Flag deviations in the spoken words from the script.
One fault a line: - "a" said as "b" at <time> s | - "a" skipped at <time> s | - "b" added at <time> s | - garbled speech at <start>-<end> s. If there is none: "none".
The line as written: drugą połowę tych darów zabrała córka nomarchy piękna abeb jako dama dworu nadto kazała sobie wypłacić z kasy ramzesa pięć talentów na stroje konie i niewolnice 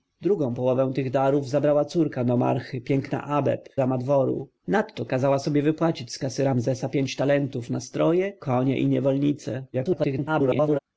- "jako" skipped at 3.7 s
- garbled speech at 9.7-10.8 s